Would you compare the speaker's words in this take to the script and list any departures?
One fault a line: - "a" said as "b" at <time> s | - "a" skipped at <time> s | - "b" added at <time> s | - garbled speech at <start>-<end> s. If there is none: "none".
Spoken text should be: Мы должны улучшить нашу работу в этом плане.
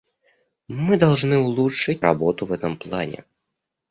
- "нашу" skipped at 2.0 s